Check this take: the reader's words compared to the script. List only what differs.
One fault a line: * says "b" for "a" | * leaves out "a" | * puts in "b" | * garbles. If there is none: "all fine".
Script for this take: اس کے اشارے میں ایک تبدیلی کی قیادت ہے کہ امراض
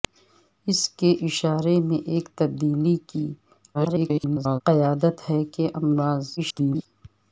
* garbles
* garbles